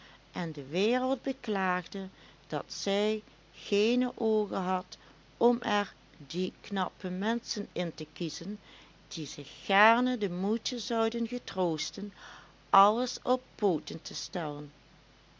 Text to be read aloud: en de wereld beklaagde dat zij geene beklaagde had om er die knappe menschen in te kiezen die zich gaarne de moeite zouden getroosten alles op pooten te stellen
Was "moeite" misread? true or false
false